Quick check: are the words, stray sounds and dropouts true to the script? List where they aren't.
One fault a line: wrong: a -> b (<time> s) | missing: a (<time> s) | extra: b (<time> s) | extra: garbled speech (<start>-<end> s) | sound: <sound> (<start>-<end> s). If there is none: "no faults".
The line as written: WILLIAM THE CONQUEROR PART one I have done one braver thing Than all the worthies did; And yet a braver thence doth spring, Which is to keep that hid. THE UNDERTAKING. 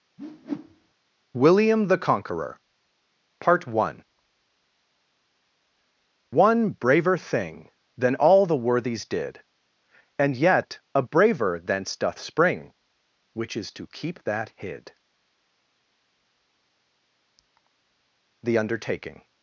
sound: whoosh (0.2-0.9 s)
missing: I have done (4.1 s)